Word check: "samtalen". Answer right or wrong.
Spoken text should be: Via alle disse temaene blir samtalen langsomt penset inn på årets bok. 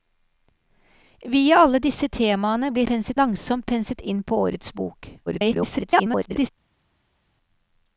wrong